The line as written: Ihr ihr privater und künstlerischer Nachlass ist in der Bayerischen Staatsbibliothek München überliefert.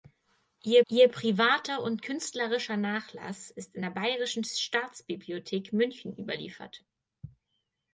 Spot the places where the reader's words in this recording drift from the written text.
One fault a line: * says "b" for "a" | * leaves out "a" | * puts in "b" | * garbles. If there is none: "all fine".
all fine